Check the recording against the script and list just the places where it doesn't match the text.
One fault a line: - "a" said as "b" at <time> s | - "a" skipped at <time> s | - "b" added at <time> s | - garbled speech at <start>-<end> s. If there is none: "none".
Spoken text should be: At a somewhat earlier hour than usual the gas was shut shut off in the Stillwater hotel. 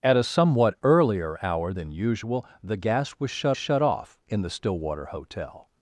none